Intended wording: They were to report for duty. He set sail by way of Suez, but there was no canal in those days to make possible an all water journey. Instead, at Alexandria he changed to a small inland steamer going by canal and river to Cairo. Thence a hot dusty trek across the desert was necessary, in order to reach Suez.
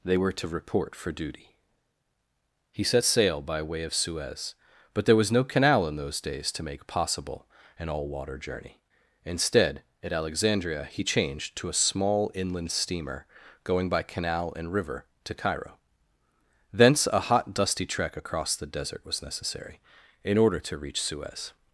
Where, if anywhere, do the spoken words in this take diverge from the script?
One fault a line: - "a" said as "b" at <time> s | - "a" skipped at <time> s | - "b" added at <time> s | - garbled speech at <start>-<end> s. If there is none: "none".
none